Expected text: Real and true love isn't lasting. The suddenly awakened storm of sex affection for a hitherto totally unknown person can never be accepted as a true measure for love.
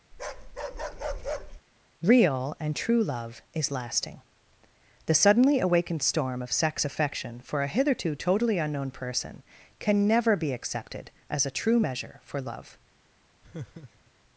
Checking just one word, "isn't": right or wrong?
wrong